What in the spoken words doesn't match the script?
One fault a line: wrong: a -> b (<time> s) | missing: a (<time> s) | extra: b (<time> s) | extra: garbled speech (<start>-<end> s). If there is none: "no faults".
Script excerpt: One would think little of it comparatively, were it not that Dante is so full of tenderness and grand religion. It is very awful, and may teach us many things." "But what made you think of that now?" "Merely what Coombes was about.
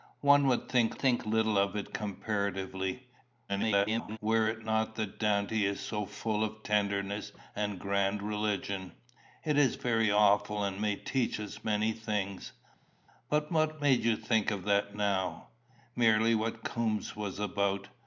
extra: think (1.0 s)
extra: garbled speech (3.5-4.2 s)